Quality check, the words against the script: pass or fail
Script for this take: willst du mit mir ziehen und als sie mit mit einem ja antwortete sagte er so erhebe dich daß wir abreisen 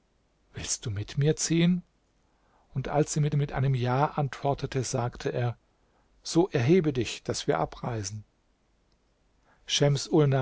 pass